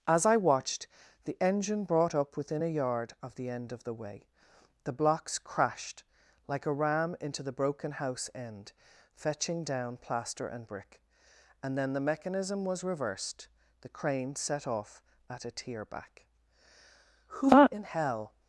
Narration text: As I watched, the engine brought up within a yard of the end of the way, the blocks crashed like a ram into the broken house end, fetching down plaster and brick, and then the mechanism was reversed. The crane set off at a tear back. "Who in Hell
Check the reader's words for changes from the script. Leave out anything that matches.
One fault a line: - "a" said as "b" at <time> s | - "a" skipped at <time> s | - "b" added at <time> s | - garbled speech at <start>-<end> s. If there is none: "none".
none